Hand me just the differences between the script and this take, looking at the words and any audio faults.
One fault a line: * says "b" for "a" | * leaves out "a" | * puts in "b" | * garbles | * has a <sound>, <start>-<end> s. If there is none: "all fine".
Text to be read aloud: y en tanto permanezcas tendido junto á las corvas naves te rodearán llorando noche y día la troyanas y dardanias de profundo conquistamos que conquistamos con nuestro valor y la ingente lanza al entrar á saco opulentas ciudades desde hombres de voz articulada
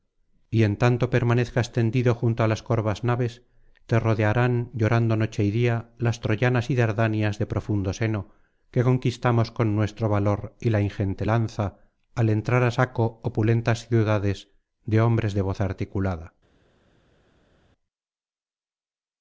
* says "las" for "la"
* says "seno" for "conquistamos"
* says "de" for "desde"